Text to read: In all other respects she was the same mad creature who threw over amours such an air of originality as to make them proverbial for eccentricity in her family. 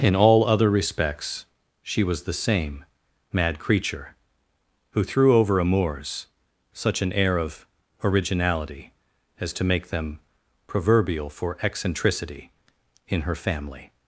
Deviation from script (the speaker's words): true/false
false